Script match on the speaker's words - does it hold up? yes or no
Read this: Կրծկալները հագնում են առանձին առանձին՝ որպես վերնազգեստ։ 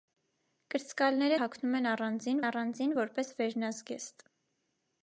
yes